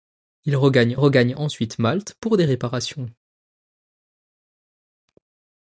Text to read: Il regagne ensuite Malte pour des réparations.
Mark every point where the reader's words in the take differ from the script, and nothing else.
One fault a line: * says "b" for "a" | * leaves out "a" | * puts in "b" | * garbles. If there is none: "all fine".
* puts in "regagne"